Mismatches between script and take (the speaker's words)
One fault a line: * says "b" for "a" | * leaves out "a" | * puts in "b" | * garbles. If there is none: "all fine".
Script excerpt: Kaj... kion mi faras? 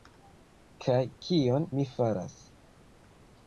all fine